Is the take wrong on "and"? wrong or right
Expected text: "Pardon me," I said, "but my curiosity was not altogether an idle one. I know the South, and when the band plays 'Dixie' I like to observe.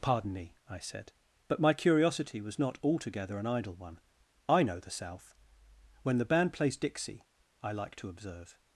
wrong